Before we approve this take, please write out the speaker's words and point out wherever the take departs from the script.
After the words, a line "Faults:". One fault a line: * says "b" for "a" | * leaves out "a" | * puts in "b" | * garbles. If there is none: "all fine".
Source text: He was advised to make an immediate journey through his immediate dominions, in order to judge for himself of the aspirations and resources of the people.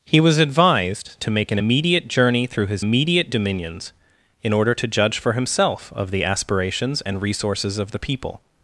He was advised to make an immediate journey through his immediate dominions, in order to judge for himself of the aspirations and resources of the people.
Faults:
all fine